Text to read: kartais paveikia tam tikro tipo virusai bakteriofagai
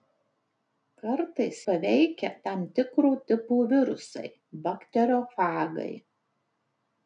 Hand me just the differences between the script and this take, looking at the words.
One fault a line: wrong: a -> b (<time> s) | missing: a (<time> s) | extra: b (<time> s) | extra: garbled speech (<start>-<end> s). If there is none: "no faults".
no faults